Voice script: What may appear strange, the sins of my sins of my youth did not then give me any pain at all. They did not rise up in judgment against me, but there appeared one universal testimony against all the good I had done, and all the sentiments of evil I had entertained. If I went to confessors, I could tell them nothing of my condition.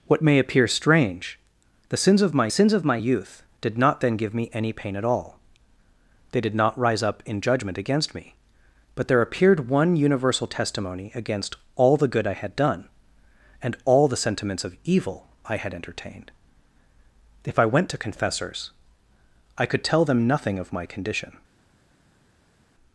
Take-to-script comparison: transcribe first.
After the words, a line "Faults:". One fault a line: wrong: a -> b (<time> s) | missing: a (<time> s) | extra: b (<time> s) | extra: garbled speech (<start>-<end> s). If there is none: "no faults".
What may appear strange, the sins of my sins of my youth did not then give me any pain at all. They did not rise up in judgment against me, but there appeared one universal testimony against all the good I had done, and all the sentiments of evil I had entertained. If I went to confessors, I could tell them nothing of my condition.
Faults:
no faults